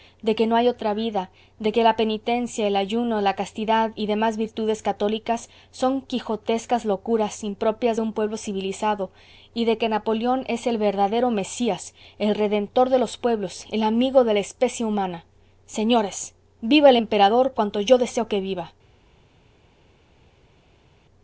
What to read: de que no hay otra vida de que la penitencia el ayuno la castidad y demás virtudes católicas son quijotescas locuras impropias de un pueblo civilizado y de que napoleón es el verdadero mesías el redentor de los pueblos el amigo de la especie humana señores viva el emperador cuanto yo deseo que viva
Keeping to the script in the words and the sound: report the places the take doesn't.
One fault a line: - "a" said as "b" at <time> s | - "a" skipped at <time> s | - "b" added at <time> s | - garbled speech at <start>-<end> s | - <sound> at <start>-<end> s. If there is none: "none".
none